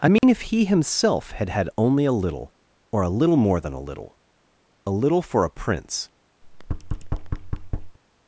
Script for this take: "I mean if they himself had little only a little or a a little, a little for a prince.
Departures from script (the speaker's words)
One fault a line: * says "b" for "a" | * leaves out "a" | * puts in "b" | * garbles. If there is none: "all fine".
* says "he" for "they"
* says "had" for "little"
* puts in "little more than"